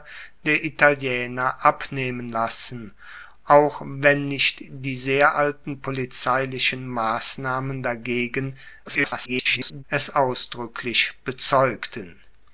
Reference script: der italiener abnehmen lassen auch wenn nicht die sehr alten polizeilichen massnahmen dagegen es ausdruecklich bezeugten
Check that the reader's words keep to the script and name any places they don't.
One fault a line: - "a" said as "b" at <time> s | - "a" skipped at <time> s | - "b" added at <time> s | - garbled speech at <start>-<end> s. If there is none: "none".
- garbled speech at 8.8-9.8 s